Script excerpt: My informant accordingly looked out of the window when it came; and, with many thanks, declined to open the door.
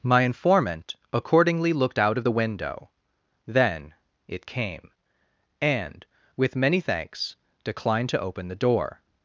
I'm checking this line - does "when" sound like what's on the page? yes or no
no